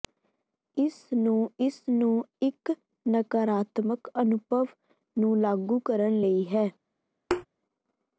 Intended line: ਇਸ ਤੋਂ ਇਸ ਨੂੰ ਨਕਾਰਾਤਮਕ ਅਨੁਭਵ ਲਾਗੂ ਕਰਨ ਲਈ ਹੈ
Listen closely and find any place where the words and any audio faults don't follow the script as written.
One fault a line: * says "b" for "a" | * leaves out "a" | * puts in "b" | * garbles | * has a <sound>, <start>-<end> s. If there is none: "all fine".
* says "ਨੂੰ" for "ਤੋਂ"
* puts in "ਇੱਕ"
* puts in "ਨੂੰ"
* has a thud, 7.3-7.5 s